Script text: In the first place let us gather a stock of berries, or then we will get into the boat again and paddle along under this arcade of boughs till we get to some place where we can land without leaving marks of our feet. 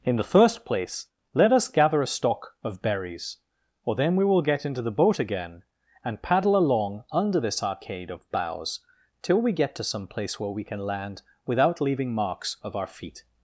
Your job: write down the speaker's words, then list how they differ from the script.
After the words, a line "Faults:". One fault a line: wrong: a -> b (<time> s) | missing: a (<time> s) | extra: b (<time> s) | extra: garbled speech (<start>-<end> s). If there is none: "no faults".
In the first place let us gather a stock of berries, or then we will get into the boat again and paddle along under this arcade of boughs till we get to some place where we can land without leaving marks of our feet.
Faults:
no faults